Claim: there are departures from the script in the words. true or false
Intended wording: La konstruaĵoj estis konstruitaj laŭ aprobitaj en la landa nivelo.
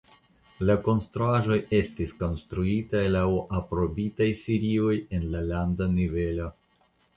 true